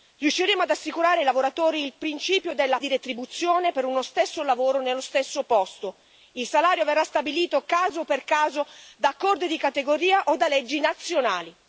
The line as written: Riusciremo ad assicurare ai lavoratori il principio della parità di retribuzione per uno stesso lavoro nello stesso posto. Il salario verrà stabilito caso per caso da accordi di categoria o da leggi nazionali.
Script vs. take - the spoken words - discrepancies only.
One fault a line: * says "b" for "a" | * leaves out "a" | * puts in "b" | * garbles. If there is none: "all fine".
* leaves out "parità"